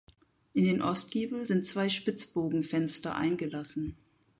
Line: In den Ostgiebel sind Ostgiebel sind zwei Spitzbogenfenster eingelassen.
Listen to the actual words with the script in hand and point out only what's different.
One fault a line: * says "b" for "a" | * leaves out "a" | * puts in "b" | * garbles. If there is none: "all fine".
* leaves out "Ostgiebel sind"